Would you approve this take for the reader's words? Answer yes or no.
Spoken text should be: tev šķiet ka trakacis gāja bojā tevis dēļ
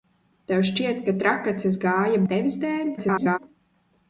no